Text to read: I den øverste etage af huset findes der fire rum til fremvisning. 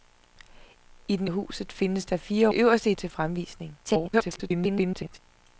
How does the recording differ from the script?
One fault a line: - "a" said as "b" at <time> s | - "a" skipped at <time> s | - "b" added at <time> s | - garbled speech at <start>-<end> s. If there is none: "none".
- "øverste etage" skipped at 1.3 s
- "rum" said as "øverste" at 2.5 s
- garbled speech at 3.8-5.2 s